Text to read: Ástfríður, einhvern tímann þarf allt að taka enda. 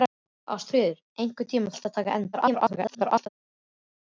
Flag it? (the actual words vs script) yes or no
yes